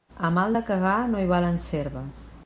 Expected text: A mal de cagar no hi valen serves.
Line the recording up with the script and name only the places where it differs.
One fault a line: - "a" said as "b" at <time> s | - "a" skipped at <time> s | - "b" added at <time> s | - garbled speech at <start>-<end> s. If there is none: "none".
none